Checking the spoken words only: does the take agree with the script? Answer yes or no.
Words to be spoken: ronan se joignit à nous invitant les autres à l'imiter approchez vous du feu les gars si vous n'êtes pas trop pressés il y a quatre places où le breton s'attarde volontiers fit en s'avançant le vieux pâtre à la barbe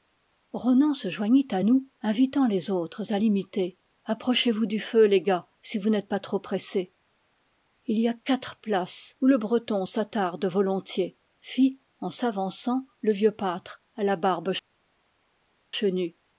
yes